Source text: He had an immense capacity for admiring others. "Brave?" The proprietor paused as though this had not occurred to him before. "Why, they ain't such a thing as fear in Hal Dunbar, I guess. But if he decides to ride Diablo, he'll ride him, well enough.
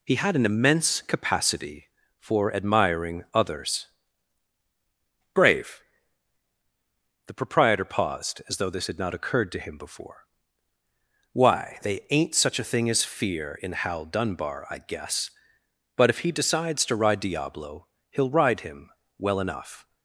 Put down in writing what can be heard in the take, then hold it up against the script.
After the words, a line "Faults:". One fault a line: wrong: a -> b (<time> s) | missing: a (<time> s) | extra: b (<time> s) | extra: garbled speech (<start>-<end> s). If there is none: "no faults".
He had an immense capacity for admiring others. "Brave?" The proprietor paused as though this had not occurred to him before. "Why, they ain't such a thing as fear in Hal Dunbar, I guess. But if he decides to ride Diablo, he'll ride him, well enough.
Faults:
no faults